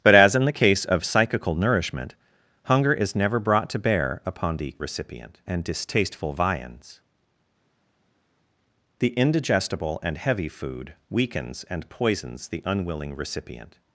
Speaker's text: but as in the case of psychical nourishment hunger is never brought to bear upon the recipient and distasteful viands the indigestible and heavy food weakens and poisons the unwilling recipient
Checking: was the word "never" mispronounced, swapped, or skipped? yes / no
no